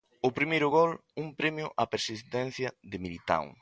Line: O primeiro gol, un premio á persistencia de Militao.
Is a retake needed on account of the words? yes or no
no